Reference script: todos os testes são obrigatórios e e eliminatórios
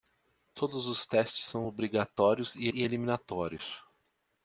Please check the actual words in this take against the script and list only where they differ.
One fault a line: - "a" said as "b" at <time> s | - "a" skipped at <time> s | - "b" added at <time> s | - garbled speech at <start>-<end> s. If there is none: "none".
none